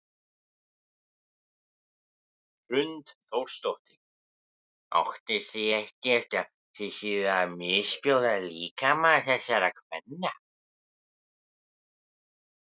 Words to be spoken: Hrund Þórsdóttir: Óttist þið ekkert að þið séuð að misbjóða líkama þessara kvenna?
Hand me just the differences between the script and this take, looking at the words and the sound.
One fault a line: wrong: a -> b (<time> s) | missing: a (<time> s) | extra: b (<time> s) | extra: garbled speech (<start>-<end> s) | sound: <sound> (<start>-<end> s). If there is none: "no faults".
no faults